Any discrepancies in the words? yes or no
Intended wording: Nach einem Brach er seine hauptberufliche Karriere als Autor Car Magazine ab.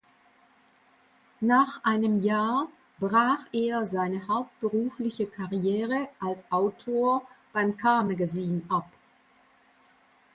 yes